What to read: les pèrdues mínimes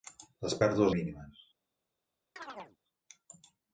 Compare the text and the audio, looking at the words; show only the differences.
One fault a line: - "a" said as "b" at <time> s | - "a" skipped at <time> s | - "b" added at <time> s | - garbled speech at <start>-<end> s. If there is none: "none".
none